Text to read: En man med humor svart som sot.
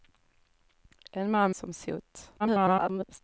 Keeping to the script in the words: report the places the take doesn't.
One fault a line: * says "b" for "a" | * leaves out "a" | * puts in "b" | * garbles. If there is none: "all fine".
* leaves out "med humor svart"
* garbles